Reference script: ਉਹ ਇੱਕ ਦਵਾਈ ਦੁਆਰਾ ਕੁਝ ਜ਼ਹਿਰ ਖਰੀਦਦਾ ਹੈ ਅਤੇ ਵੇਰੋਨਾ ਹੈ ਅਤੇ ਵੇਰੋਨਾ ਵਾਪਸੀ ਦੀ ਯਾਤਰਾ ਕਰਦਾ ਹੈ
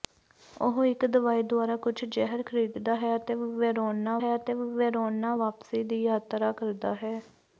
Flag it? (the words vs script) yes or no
no